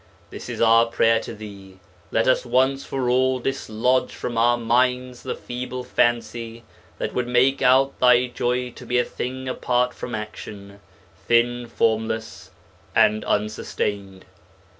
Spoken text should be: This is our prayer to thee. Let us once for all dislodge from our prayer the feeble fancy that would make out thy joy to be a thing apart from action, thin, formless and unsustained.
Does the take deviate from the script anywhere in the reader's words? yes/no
yes